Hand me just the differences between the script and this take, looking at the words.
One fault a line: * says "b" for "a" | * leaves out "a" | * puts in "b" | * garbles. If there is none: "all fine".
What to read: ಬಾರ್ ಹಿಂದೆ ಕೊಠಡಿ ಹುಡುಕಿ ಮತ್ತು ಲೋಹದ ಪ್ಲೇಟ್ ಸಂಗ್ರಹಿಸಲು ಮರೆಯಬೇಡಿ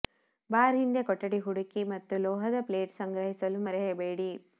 all fine